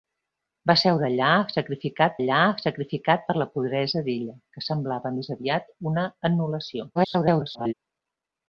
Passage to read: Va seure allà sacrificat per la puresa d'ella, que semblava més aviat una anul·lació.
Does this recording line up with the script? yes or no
no